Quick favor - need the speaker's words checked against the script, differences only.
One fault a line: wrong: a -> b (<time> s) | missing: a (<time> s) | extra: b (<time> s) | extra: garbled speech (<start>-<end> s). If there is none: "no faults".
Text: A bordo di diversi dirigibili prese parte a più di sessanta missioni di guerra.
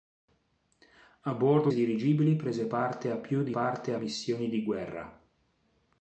missing: di diversi (1.7 s)
wrong: sessanta -> parte (3.5 s)